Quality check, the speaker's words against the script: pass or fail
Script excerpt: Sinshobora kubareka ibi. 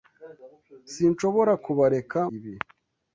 pass